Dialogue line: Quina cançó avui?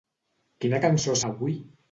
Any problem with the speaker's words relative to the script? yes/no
no